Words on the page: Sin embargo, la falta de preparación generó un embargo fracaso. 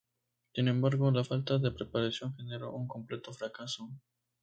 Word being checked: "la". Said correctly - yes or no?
yes